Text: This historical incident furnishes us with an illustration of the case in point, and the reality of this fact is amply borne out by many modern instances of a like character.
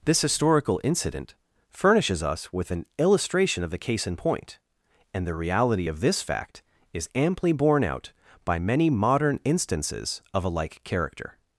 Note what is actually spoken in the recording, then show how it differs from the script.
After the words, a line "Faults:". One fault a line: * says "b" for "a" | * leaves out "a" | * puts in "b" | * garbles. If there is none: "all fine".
This historical incident furnishes us with an illustration of the case in point, and the reality of this fact is amply borne out by many modern instances of a like character.
Faults:
all fine